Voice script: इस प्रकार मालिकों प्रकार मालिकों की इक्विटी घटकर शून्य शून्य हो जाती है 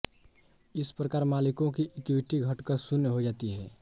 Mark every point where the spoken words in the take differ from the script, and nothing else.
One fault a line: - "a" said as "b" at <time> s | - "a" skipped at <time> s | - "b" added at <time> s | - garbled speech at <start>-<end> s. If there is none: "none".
- "प्रकार मालिकों" skipped at 1.7 s
- "शून्य" skipped at 3.1 s